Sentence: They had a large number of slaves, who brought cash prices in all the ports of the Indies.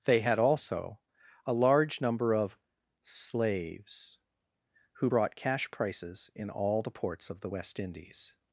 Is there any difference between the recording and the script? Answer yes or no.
yes